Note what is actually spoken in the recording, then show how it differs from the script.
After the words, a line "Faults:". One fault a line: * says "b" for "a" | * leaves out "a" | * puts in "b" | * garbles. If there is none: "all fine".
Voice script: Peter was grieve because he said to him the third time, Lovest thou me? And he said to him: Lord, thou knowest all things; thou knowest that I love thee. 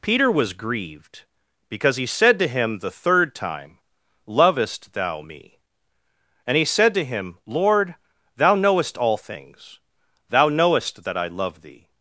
Peter was grieved because he said to him the third time, Lovest thou me? And he said to him: Lord, thou knowest all things; thou knowest that I love thee.
Faults:
* says "grieved" for "grieve"